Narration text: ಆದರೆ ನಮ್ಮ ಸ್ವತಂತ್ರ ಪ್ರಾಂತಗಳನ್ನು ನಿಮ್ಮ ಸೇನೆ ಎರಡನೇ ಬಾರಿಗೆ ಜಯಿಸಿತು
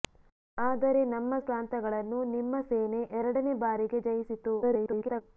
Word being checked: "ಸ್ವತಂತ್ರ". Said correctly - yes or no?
no